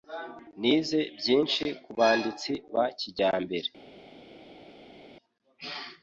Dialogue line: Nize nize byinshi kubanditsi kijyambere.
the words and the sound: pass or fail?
fail